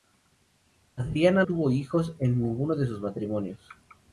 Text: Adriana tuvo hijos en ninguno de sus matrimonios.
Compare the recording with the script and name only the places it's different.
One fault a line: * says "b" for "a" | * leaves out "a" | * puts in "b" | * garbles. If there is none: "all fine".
all fine